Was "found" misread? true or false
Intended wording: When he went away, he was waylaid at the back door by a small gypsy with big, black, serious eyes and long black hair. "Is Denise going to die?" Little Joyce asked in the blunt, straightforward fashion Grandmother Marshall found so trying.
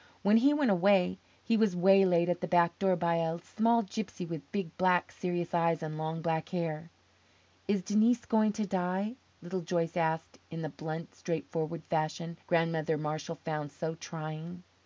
false